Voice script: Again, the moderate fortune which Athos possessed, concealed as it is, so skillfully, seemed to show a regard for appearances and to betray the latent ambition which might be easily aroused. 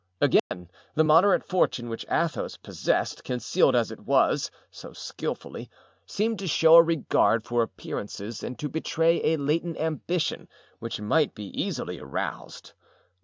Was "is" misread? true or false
true